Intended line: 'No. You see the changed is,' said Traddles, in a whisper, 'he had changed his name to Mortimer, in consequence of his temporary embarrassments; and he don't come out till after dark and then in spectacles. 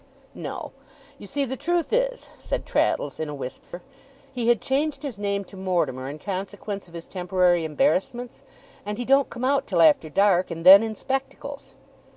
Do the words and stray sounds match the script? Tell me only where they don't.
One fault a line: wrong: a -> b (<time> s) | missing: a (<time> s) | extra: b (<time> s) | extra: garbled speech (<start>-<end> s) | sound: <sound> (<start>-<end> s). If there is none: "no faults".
wrong: changed -> truth (1.6 s)
sound: dropout (3.6-3.7 s)